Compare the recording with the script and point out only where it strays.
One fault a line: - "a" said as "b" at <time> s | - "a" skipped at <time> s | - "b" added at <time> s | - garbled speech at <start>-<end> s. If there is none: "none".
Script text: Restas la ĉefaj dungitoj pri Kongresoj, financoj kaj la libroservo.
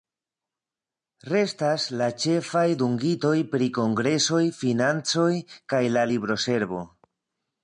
none